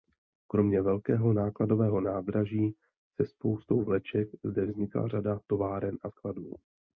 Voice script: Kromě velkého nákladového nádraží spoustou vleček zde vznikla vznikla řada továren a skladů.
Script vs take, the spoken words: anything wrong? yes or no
yes